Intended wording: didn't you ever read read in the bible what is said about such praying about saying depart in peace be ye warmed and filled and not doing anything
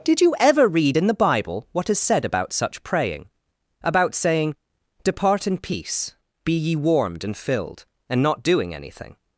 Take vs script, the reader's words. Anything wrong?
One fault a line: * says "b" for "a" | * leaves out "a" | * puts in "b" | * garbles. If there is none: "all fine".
* says "did" for "didn't"
* leaves out "read"